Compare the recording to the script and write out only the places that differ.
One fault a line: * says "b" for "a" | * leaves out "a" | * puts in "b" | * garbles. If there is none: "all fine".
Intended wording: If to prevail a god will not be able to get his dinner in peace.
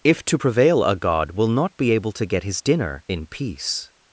all fine